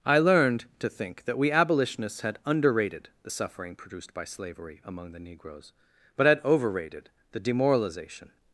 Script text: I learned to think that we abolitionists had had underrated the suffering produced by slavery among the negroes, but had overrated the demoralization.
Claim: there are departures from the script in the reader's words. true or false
true